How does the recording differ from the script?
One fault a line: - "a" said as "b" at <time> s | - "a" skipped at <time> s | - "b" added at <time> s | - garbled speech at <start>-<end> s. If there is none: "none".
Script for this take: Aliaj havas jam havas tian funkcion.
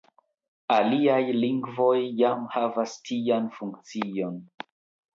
- "havas" said as "lingvoj" at 1.4 s